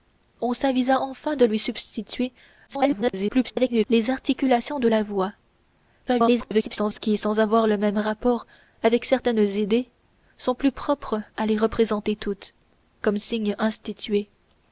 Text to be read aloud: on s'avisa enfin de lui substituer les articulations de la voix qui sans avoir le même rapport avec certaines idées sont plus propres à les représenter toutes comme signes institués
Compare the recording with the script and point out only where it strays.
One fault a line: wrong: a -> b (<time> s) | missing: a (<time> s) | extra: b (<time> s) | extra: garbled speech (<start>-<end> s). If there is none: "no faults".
extra: garbled speech (2.7-3.8 s)
extra: garbled speech (6.1-7.0 s)